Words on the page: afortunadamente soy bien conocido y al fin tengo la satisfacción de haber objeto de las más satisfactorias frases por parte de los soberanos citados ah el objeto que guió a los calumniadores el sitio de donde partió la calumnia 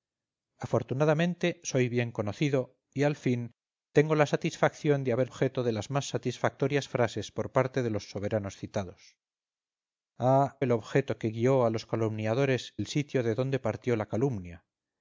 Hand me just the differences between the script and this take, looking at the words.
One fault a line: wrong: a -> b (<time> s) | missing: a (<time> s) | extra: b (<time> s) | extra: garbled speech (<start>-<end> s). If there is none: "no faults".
no faults